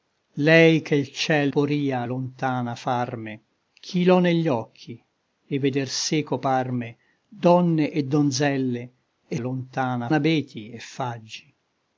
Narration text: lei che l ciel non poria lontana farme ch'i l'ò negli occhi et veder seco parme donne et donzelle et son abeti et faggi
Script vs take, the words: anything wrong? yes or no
yes